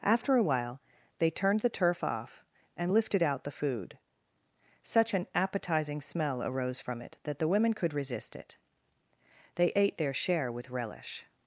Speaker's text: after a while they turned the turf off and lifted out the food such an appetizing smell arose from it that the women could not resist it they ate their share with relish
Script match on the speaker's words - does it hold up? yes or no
no